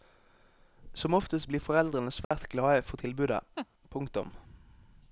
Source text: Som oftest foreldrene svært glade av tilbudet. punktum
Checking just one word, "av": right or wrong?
wrong